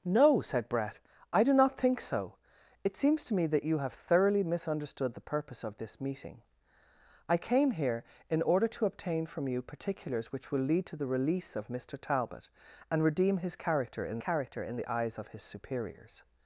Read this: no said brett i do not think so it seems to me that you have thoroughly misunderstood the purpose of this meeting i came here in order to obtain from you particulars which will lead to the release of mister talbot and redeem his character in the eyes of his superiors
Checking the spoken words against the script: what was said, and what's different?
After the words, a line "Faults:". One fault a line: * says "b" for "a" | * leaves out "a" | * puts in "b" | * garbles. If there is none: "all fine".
no said brett i do not think so it seems to me that you have thoroughly misunderstood the purpose of this meeting i came here in order to obtain from you particulars which will lead to the release of mister talbot and redeem his character in character in the eyes of his superiors
Faults:
* puts in "character in"